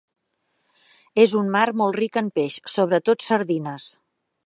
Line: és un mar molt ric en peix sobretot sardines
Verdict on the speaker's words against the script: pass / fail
pass